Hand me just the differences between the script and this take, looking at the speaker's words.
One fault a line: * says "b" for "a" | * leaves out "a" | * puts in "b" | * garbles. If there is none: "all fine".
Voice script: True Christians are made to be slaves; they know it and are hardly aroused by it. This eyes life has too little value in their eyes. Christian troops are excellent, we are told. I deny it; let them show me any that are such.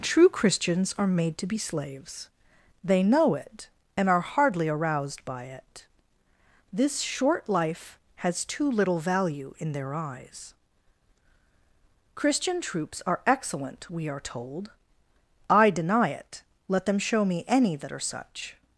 * says "short" for "eyes"